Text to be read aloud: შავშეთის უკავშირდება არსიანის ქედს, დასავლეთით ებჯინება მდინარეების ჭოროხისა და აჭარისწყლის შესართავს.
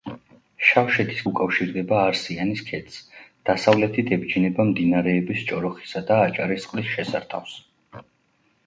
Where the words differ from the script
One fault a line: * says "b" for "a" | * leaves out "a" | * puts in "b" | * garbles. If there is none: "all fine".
all fine